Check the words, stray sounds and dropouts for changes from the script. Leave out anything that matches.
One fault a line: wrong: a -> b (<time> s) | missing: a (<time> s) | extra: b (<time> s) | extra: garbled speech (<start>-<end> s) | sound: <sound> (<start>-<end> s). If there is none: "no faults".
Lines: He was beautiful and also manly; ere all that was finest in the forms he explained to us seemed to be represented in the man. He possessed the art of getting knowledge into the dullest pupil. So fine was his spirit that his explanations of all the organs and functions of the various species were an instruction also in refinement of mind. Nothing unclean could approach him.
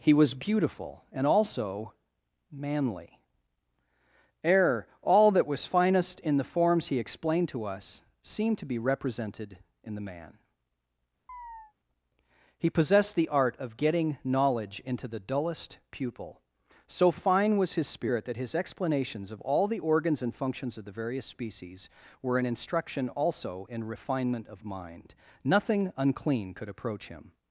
sound: chirp (11.3-11.7 s)